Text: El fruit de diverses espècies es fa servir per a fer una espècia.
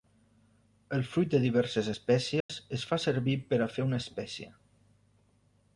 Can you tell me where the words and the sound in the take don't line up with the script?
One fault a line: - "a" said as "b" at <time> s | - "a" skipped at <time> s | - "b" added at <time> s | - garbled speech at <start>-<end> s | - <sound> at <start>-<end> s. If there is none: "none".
- dropout at 2.4-2.5 s